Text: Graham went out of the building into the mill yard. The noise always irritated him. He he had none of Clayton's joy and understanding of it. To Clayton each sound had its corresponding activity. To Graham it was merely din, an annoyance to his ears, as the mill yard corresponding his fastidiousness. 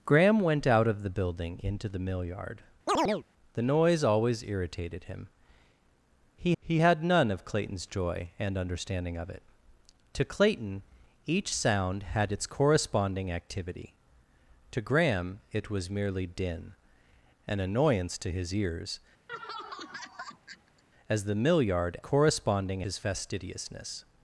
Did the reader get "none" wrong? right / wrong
right